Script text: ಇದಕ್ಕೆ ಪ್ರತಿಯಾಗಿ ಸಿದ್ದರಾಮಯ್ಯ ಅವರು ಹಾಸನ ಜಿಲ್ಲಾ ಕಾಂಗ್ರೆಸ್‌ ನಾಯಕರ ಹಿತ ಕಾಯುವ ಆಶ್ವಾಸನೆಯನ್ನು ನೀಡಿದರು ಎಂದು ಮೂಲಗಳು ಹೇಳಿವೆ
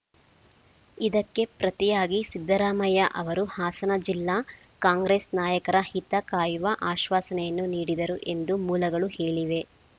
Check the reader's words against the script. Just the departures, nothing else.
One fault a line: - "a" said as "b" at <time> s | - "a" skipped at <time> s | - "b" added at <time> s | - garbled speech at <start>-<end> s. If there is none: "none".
none